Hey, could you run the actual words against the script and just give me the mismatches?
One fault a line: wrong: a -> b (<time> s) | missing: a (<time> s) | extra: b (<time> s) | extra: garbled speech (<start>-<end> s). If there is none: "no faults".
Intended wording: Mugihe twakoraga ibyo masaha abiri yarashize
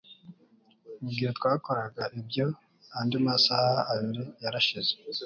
extra: andi (3.0 s)